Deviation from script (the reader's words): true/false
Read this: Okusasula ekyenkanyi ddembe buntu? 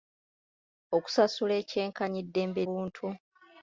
false